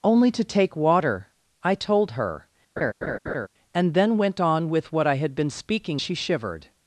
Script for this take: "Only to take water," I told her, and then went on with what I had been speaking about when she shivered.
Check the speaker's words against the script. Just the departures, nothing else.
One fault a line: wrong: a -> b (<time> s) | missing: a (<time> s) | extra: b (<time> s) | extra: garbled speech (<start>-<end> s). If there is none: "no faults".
missing: about when (6.0 s)